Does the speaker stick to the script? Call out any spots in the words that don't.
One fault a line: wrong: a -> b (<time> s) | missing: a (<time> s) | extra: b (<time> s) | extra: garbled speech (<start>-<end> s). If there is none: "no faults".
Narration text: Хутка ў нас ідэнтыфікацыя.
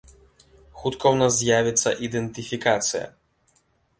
extra: з'явіцца (1.4 s)